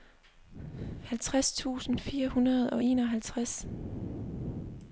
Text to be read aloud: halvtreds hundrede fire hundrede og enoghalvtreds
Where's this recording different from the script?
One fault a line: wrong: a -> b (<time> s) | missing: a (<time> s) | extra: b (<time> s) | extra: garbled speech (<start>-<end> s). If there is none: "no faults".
wrong: hundrede -> tusind (1.5 s)